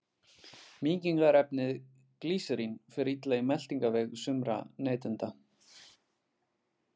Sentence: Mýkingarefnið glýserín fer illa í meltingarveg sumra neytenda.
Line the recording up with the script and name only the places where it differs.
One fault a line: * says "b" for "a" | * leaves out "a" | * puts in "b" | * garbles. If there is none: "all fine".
all fine